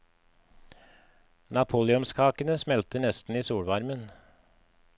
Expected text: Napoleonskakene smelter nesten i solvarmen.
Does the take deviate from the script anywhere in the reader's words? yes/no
no